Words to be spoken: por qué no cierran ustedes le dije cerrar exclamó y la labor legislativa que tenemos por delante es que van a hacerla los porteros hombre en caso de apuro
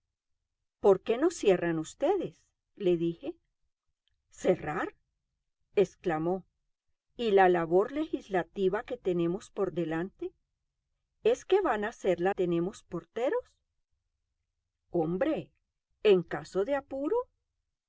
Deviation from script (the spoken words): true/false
true